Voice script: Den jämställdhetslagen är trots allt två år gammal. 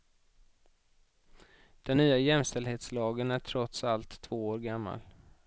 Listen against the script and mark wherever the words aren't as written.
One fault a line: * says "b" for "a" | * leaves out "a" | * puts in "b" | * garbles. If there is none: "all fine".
* puts in "nya"